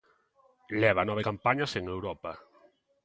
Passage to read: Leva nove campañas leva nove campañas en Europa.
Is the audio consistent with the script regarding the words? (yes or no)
no